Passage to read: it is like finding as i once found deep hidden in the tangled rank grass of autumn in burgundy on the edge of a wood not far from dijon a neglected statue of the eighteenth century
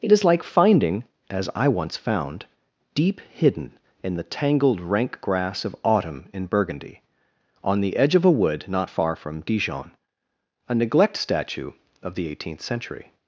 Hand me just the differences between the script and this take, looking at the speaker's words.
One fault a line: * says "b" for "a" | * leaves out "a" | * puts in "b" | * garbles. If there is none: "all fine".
* says "neglect" for "neglected"